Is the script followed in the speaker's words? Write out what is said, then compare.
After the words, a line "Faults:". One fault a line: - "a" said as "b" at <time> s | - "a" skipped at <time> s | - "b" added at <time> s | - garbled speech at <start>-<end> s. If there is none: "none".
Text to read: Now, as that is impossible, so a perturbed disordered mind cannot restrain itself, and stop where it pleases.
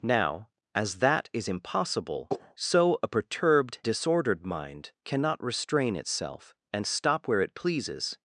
Now, as that is impossible, so a perturbed disordered mind cannot restrain itself, and stop where it pleases.
Faults:
none